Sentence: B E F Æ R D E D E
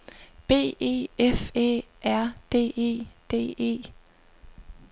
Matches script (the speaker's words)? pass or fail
pass